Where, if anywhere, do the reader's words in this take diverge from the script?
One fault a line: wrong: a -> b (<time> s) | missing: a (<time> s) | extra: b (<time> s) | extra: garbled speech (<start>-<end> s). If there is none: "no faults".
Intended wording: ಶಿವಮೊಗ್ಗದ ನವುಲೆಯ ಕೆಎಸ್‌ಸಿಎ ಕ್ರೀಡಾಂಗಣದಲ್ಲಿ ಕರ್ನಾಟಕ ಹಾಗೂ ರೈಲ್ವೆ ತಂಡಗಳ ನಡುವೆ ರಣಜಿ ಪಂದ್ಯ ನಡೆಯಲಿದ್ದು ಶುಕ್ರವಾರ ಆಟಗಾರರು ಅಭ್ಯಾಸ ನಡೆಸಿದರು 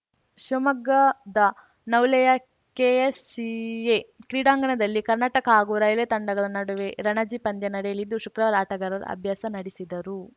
no faults